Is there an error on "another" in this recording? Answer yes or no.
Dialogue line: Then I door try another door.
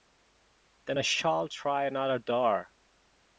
no